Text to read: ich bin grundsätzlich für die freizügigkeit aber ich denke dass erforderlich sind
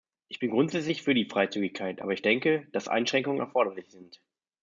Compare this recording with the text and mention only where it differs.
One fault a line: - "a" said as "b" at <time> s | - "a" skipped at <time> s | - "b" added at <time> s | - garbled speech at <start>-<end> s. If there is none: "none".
- "einschränkungen" added at 2.9 s